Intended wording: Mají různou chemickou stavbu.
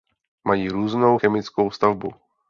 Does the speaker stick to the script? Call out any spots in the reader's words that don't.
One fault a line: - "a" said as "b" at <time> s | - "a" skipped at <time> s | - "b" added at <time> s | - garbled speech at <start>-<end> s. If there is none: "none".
none